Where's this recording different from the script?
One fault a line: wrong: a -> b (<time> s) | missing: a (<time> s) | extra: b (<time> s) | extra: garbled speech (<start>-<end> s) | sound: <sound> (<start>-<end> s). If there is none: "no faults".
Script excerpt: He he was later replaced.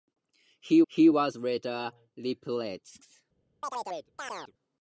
sound: chirp (3.6-4.5 s)